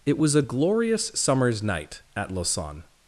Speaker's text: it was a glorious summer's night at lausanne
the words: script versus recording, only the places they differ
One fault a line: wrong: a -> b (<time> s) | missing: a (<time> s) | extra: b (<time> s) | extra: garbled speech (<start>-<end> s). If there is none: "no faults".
no faults